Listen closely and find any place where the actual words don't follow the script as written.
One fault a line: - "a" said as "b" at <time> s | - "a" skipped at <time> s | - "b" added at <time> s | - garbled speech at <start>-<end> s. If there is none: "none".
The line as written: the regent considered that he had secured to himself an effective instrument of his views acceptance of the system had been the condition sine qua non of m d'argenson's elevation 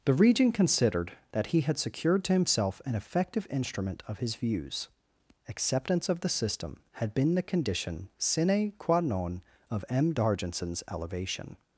none